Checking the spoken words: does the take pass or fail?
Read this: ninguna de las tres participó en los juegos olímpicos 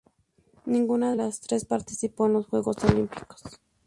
fail